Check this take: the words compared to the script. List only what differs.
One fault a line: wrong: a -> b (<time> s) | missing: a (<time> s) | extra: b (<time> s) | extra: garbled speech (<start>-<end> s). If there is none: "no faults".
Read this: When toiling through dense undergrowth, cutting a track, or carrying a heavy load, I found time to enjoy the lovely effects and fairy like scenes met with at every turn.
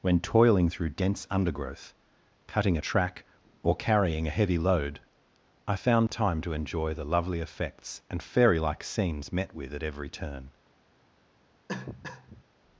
no faults